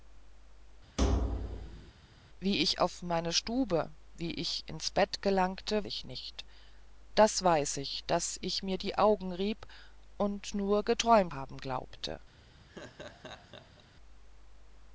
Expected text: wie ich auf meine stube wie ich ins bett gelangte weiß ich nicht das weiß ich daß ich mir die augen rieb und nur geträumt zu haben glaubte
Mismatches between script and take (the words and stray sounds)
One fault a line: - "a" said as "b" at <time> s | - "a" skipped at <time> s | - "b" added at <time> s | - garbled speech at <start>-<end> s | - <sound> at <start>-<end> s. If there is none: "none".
- thud at 1.0-1.9 s
- "weiß" skipped at 5.8 s
- "zu" skipped at 11.3 s
- laugh at 12.7-13.8 s